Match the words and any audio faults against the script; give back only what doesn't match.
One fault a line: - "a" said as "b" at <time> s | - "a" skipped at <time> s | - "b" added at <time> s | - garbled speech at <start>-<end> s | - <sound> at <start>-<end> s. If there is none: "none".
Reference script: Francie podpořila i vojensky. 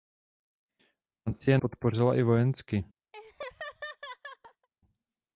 - laugh at 3.1-4.7 s